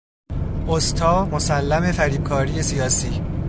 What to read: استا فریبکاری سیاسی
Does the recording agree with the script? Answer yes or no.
no